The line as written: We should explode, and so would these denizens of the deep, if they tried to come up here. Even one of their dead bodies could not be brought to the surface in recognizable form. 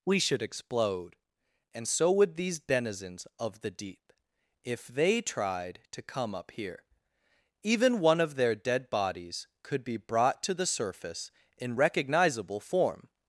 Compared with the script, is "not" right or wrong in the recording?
wrong